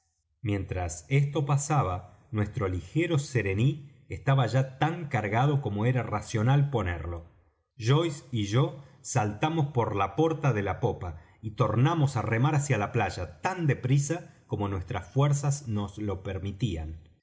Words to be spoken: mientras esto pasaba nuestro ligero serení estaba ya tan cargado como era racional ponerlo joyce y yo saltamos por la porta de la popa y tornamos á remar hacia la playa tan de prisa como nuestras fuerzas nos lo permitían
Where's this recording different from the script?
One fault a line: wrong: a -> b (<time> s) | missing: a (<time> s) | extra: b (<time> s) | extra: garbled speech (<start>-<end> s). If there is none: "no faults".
no faults